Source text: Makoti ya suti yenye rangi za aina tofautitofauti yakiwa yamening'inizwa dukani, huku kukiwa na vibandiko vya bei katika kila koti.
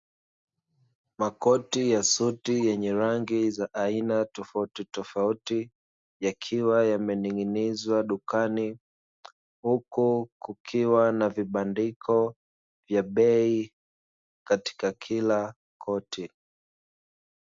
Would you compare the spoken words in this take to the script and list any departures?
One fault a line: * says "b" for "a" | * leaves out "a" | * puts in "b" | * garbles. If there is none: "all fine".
all fine